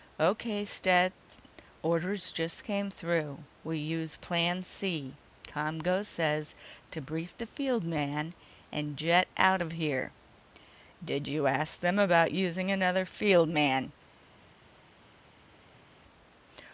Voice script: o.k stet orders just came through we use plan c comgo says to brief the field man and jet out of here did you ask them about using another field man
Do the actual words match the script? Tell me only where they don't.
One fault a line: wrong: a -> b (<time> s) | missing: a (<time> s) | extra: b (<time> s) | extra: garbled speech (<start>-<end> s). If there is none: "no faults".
no faults